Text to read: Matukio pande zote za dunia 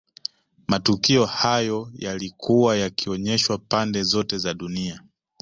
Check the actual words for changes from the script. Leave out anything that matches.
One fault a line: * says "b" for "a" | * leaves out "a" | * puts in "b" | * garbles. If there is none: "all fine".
* puts in "hayo yalikuwa yakionyeshwa"